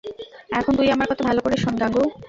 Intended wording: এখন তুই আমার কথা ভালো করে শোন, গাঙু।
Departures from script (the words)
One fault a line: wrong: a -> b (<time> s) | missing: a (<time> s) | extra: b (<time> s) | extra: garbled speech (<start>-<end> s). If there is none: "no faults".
no faults